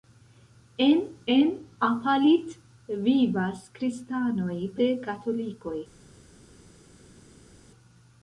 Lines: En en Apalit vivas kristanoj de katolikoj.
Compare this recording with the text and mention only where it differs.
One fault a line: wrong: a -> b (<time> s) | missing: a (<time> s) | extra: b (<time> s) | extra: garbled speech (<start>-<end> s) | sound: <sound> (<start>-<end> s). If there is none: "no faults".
no faults